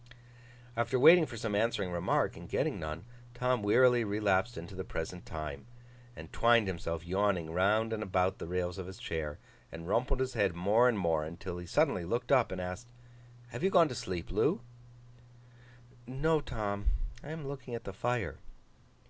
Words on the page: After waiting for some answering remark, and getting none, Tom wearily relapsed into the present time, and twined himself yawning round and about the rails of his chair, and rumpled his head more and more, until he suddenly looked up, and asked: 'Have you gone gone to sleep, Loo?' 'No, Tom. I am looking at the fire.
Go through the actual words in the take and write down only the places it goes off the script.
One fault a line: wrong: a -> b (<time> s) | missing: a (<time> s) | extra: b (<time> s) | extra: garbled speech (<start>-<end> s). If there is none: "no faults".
missing: gone (13.9 s)